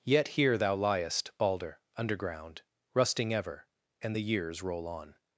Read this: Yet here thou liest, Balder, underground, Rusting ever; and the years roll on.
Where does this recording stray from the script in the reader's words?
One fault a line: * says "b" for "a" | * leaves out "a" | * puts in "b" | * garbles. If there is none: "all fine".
all fine